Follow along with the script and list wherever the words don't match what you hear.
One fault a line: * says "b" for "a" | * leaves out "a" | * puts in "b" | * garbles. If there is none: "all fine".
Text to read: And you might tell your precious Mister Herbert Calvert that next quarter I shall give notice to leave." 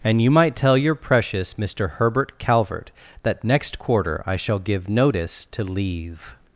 all fine